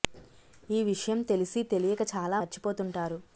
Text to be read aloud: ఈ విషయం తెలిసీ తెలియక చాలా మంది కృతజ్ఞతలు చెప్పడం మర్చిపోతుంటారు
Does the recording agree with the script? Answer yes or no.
no